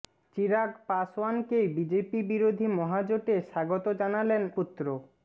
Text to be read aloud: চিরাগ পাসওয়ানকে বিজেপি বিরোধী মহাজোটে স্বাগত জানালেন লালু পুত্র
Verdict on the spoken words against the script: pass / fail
fail